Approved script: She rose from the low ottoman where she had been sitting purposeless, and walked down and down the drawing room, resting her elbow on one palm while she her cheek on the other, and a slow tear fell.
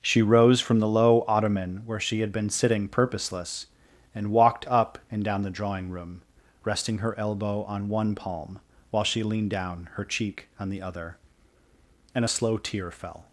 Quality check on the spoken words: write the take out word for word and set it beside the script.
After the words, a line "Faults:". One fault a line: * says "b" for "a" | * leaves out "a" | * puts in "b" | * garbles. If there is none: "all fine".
She rose from the low ottoman where she had been sitting purposeless, and walked up and down the drawing room, resting her elbow on one palm while she leaned down her cheek on the other, and a slow tear fell.
Faults:
* says "up" for "down"
* puts in "leaned down"